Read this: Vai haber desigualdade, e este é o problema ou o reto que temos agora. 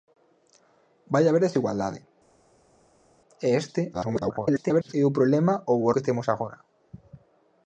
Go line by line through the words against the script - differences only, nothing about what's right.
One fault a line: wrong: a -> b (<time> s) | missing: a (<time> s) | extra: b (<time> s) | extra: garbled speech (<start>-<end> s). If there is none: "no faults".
extra: garbled speech (3.9-4.9 s)
missing: reto (5.9 s)